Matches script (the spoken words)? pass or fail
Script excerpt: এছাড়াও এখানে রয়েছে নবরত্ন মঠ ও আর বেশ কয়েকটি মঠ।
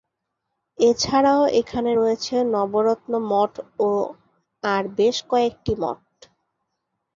pass